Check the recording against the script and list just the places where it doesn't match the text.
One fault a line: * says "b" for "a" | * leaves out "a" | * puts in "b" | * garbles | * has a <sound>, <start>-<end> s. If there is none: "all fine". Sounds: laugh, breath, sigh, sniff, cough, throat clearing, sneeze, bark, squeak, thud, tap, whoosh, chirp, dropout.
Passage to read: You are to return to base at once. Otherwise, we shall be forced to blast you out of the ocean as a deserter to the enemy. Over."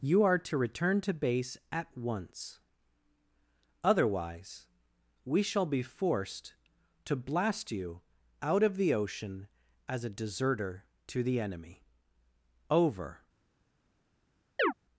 * has a chirp, 14.6-14.7 s